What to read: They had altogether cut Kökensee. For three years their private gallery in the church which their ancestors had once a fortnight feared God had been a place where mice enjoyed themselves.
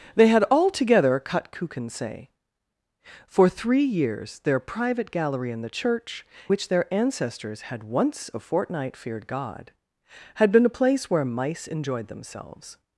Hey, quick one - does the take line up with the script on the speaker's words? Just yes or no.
yes